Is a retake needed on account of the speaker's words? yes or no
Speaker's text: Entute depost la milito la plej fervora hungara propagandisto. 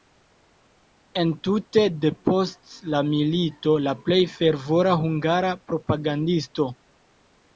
no